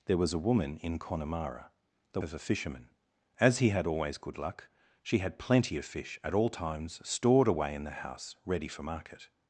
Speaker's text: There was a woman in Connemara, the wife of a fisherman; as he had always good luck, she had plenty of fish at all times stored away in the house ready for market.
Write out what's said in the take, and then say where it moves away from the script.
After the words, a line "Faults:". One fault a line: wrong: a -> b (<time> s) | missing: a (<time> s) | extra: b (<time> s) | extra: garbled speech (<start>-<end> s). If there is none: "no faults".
There was a woman in Connemara, the of a fisherman; as he had always good luck, she had plenty of fish at all times stored away in the house ready for market.
Faults:
missing: wife (2.2 s)